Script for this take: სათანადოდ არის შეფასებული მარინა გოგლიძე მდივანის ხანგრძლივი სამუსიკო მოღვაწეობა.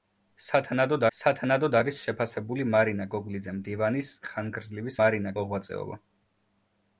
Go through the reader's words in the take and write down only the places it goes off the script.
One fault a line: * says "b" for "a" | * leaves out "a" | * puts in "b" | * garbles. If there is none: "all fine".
* puts in "სათანადოდ"
* says "მარინა" for "სამუსიკო"